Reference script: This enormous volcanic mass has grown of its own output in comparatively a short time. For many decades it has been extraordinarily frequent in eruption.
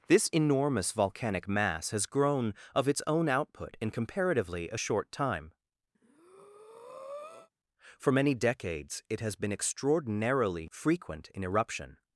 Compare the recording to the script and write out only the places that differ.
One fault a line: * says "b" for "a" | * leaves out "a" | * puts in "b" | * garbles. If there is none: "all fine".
all fine